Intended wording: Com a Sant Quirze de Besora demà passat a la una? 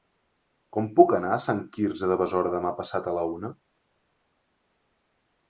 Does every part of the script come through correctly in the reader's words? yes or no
no